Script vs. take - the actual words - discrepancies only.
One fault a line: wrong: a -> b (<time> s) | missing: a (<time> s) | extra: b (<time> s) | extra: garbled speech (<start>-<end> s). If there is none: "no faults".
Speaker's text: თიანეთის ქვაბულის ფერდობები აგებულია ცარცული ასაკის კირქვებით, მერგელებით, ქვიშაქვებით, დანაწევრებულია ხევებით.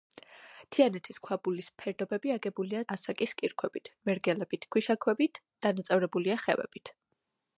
missing: ცარცული (2.8 s)